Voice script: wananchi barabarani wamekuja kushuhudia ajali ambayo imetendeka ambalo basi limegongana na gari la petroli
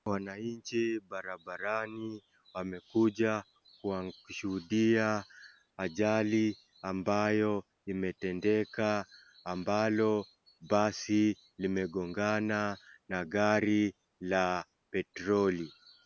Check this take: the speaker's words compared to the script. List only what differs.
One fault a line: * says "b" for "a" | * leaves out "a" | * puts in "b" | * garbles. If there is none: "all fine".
all fine